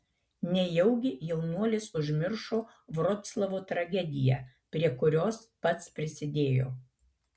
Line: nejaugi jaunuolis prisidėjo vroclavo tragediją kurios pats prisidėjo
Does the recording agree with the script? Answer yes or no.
no